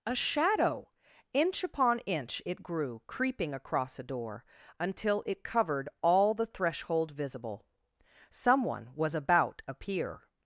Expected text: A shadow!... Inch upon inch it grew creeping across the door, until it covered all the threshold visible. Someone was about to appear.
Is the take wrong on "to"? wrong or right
wrong